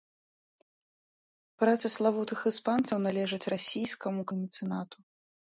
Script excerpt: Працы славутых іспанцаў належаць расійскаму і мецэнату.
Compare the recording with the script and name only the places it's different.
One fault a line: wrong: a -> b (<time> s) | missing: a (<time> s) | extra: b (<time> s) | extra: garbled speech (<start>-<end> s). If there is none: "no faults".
no faults